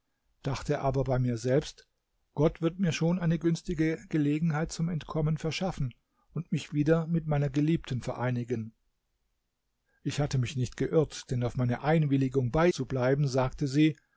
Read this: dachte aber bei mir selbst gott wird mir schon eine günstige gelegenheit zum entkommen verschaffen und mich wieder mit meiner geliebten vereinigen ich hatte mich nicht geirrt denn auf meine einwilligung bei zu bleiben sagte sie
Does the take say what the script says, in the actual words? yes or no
yes